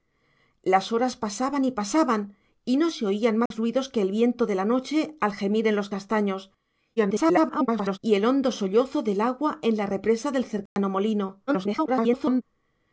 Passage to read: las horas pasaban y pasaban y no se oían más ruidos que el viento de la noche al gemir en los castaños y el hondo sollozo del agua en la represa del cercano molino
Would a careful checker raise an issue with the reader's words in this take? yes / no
yes